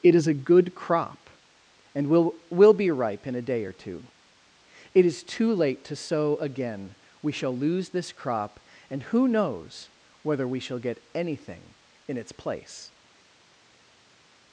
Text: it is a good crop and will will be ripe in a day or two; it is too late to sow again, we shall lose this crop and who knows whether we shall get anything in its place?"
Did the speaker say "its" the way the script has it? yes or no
yes